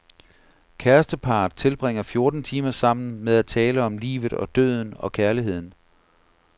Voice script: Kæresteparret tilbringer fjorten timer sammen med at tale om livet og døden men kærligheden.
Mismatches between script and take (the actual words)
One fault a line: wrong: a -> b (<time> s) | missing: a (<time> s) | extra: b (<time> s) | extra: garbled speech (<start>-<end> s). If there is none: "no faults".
wrong: men -> og (5.0 s)